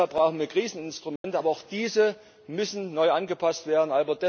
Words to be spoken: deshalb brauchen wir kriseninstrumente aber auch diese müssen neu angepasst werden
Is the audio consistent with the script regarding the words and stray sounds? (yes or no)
no